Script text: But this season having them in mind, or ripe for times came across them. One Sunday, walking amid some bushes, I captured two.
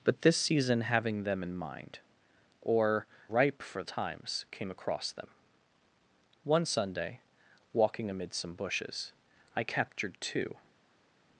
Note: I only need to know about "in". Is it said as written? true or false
true